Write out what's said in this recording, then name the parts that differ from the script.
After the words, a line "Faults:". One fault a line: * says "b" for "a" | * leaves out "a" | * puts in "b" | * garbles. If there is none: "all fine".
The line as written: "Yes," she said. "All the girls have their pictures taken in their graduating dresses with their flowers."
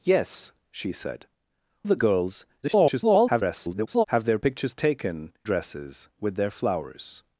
"Yes," she said. "The girls [garbled] have their pictures taken dresses with their flowers."
Faults:
* leaves out "All"
* garbles
* leaves out "in their graduating"